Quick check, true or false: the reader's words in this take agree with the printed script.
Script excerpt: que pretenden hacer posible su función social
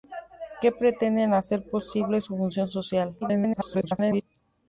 false